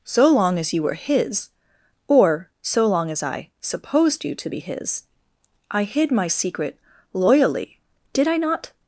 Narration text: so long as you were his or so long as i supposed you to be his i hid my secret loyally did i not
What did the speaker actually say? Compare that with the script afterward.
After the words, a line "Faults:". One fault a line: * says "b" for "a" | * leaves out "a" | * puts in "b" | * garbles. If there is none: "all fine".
so long as you were his or so long as i supposed you to be his i hid my secret loyally did i not
Faults:
all fine